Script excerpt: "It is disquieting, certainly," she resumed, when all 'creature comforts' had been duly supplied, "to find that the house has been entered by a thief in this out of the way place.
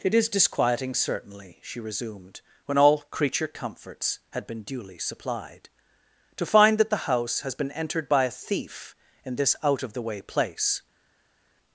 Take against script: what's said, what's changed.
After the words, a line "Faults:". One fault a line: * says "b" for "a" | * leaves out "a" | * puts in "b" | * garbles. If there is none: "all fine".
"It is disquieting, certainly," she resumed, when all 'creature comforts' had been duly supplied, "to find that the house has been entered by a thief in this out of the way place.
Faults:
all fine